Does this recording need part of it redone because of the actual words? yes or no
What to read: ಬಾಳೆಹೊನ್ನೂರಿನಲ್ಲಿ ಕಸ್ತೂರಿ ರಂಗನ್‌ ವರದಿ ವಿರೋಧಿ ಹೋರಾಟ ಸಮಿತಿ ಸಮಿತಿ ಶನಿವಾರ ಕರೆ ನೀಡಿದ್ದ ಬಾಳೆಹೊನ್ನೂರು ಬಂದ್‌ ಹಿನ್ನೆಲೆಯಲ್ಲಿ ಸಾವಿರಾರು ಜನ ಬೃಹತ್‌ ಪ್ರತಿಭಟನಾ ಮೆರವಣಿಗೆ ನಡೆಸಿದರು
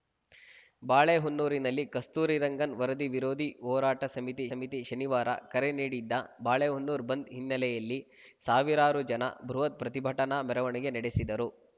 no